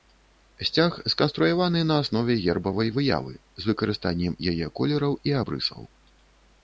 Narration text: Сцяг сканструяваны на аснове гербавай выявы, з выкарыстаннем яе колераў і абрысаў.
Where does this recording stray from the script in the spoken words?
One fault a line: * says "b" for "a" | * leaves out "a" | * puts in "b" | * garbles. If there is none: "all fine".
all fine